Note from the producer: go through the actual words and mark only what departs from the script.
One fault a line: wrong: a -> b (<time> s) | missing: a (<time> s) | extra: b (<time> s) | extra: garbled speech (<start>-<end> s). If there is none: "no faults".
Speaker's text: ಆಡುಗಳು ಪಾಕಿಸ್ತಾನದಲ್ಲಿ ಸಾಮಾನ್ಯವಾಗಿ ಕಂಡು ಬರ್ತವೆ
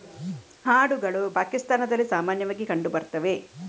no faults